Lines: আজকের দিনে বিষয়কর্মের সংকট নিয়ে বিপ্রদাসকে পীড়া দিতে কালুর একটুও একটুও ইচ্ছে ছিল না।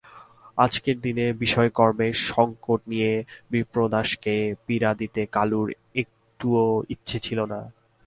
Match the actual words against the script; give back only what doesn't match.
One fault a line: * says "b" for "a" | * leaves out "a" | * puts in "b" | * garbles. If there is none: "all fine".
* leaves out "একটুও"